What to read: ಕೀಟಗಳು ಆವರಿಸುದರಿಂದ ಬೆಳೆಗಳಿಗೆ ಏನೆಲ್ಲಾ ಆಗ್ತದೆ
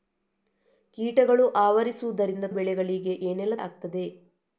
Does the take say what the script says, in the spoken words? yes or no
yes